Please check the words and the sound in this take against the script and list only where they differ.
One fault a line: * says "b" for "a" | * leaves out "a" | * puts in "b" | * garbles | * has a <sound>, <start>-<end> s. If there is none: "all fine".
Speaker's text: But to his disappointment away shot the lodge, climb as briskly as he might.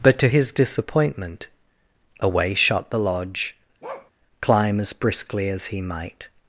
* has a bark, 3.8-4.1 s